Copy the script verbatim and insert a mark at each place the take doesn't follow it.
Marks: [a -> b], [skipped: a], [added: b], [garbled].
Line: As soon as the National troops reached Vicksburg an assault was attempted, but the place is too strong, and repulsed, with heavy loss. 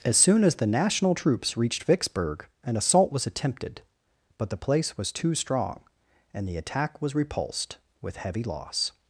As soon as the National troops reached Vicksburg an assault was attempted, but the place [is -> was] too strong, and [added: the attack was] repulsed, with heavy loss.